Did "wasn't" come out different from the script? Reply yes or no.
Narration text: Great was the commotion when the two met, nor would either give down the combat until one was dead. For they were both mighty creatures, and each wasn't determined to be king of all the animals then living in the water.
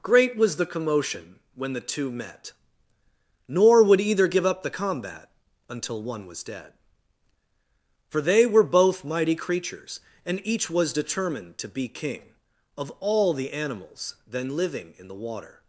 yes